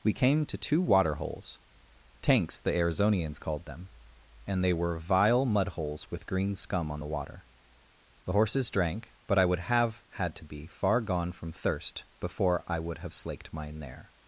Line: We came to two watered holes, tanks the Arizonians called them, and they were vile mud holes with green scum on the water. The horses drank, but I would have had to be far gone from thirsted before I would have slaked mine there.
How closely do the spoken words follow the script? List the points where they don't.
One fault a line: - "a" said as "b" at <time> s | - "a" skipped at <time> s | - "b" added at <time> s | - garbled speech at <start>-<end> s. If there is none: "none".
- "watered" said as "water" at 0.8 s
- "thirsted" said as "thirst" at 11.5 s